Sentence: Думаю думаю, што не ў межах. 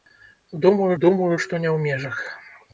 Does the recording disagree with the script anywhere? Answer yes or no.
no